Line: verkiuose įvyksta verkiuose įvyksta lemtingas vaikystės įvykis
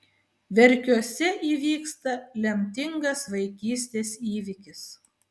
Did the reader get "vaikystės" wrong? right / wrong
right